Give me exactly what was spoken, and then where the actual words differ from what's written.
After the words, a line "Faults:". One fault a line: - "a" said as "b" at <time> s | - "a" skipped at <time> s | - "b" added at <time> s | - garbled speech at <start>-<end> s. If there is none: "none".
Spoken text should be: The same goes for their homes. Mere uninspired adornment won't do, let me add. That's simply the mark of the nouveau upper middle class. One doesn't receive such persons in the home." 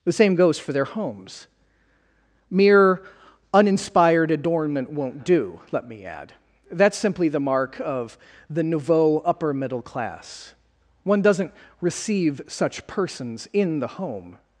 The same goes for their homes. Mere uninspired adornment won't do, let me add. That's simply the mark of the nouveau upper middle class. One doesn't receive such persons in the home."
Faults:
none